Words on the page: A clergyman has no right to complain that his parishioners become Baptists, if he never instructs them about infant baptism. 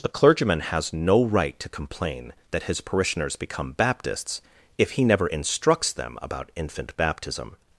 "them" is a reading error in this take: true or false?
false